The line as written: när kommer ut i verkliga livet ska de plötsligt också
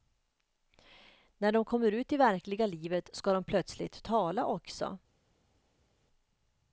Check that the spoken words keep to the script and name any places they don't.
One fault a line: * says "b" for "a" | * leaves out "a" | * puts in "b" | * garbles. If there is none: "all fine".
* puts in "de"
* puts in "tala"